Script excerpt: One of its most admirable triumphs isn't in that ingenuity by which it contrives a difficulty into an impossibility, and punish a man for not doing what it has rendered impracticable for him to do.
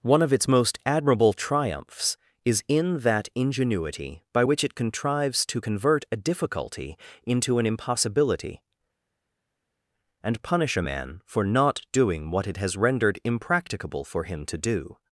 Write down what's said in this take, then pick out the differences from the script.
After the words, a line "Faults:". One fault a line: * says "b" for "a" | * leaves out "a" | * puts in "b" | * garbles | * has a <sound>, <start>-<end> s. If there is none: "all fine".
One of its most admirable triumphs is in that ingenuity by which it contrives to convert a difficulty into an impossibility, and punish a man for not doing what it has rendered impracticable for him to do.
Faults:
* says "is" for "isn't"
* puts in "to convert"